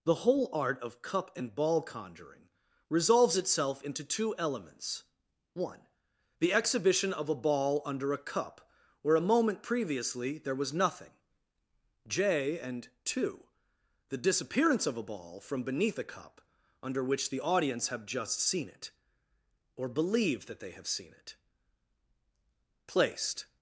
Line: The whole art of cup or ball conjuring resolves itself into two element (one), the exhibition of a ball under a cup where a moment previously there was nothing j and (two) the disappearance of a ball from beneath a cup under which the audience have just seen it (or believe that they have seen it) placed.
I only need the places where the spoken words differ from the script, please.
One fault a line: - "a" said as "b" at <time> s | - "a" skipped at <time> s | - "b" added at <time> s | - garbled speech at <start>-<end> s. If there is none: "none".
- "or" said as "and" at 1.4 s
- "element" said as "elements" at 4.3 s